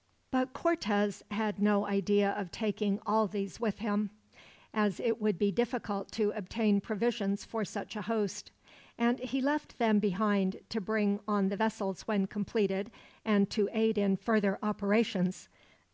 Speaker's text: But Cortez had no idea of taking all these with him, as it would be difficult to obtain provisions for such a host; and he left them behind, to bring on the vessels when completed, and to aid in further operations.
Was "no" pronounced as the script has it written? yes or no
yes